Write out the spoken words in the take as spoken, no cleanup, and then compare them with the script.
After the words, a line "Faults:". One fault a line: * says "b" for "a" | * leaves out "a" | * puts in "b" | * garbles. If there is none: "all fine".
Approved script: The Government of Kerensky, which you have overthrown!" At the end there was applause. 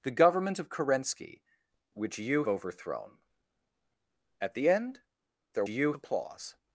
The Government of Kerensky, which you overthrown!" At the end there you applause.
Faults:
* leaves out "have"
* says "you" for "was"